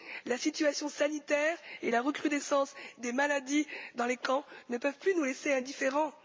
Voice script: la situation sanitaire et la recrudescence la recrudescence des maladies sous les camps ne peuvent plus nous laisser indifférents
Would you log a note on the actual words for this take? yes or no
yes